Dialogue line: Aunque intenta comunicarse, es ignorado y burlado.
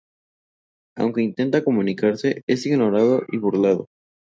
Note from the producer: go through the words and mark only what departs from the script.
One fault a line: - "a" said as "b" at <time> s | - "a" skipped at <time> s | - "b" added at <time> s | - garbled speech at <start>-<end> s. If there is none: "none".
none